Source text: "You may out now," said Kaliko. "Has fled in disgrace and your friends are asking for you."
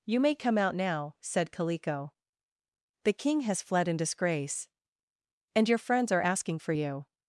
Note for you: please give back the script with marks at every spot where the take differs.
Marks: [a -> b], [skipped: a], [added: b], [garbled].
"You may [added: come] out now," said Kaliko. [added: The King] "Has fled in disgrace and your friends are asking for you."